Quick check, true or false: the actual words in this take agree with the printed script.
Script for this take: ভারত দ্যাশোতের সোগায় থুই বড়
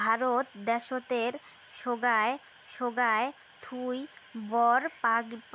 false